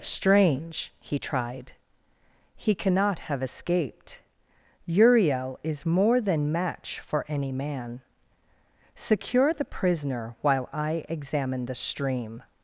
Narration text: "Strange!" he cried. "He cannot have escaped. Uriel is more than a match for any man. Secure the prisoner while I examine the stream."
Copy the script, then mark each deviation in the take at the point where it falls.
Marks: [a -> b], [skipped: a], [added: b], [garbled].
"Strange!" he [cried. -> tried] "He cannot have escaped. Uriel is more than [skipped: a] match for any man. Secure the prisoner while I examine the stream."